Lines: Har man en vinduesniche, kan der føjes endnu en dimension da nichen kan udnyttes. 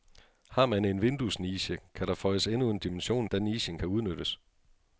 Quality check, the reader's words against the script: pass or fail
pass